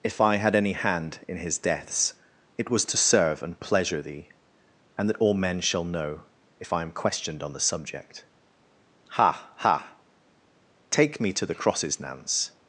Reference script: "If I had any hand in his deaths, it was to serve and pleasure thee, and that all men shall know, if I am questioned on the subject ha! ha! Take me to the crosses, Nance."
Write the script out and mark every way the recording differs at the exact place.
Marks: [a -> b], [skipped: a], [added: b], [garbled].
"If I had any hand in his deaths, it was to serve and pleasure thee, and that all men shall know, if I am questioned on the subject ha! ha! Take me to the crosses, Nance."